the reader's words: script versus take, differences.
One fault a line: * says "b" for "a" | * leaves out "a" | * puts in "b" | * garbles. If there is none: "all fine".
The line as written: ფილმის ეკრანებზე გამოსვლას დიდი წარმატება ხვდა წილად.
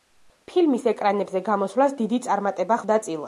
all fine